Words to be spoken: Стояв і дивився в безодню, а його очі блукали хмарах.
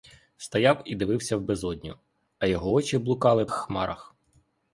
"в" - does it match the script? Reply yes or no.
yes